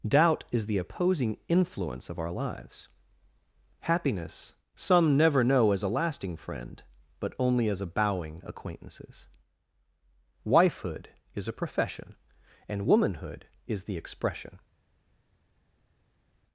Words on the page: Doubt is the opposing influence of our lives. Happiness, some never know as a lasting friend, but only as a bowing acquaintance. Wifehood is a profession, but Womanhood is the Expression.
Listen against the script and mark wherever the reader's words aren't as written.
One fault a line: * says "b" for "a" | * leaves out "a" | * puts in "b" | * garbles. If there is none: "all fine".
* says "acquaintances" for "acquaintance"
* says "and" for "but"